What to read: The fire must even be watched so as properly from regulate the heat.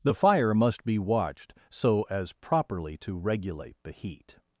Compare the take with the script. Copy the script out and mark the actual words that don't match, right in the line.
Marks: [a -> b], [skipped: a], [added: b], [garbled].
The fire must [skipped: even] be watched so as properly [from -> to] regulate the heat.